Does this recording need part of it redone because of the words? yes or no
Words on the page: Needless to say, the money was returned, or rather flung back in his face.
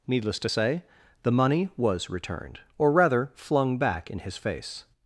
no